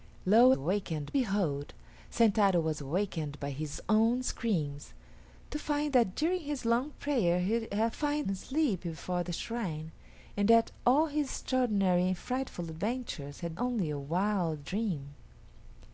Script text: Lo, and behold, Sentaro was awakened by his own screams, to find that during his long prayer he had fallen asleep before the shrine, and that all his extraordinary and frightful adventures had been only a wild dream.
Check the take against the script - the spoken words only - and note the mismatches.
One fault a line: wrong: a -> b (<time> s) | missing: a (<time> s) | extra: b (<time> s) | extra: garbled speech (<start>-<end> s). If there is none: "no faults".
wrong: and -> awakened (0.5 s)
wrong: fallen -> find (7.9 s)
missing: been (13.6 s)